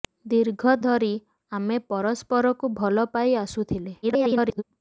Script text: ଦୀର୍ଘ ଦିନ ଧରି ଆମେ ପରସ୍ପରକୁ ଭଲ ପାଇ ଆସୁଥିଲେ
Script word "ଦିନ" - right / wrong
wrong